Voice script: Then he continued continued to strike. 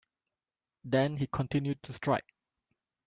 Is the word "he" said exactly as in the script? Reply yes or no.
yes